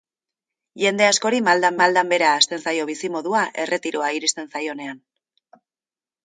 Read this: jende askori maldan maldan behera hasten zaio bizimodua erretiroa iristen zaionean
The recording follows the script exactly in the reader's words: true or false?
true